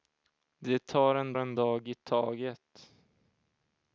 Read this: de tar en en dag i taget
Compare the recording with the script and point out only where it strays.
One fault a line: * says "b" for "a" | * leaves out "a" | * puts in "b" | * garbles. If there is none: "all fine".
all fine